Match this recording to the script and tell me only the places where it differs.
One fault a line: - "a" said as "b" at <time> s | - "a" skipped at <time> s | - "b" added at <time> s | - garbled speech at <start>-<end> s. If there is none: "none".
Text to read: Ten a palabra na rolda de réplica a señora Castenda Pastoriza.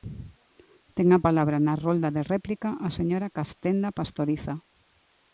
none